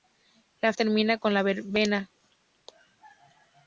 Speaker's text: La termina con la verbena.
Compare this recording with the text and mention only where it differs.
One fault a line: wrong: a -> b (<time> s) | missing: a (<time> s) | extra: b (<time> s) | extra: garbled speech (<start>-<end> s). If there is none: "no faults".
no faults